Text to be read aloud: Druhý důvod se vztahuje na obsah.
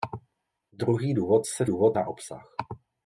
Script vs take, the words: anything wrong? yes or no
yes